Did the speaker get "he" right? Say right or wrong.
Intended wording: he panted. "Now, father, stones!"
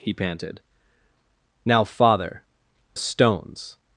right